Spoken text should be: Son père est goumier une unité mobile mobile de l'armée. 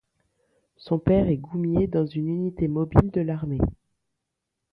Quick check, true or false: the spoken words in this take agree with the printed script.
false